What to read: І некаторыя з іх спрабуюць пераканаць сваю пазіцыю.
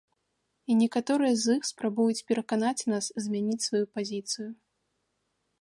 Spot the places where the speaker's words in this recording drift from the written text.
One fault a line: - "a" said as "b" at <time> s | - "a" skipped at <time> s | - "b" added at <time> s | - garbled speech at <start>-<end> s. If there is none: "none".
- "нас змяніць" added at 2.9 s